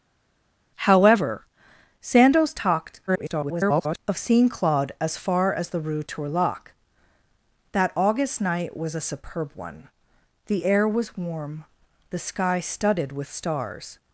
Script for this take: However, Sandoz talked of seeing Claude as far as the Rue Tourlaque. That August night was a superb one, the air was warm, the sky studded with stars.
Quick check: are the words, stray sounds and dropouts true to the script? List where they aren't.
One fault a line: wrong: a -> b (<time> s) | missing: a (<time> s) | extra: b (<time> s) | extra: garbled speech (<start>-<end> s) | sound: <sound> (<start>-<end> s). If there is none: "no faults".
extra: garbled speech (3.1-4.0 s)